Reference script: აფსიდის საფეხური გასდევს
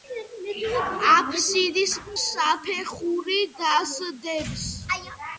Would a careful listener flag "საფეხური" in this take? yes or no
no